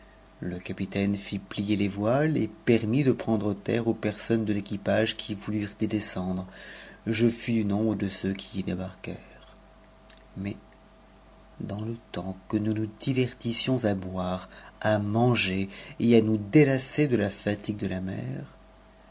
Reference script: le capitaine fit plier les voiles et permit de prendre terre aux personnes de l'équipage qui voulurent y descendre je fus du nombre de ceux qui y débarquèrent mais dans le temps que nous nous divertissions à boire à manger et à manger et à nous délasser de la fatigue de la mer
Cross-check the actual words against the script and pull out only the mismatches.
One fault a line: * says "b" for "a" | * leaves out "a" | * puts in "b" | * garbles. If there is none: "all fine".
* leaves out "manger et à"